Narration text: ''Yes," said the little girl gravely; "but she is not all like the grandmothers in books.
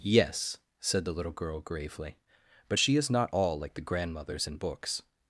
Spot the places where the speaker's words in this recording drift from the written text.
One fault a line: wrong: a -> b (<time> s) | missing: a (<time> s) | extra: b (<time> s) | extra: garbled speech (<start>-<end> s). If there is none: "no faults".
no faults